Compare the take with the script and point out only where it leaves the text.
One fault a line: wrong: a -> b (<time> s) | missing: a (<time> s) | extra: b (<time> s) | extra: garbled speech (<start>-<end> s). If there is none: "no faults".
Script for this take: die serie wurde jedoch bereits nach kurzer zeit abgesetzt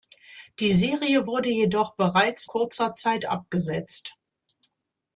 missing: nach (2.5 s)